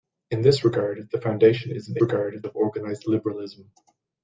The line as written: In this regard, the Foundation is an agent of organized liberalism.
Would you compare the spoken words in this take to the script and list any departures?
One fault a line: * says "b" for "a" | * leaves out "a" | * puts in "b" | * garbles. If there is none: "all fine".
* says "regard" for "agent"